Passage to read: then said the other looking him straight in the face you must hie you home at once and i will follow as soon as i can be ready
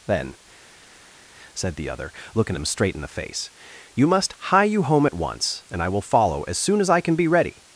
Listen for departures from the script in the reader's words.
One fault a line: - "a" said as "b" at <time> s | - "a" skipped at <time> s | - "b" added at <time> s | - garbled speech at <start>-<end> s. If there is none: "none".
none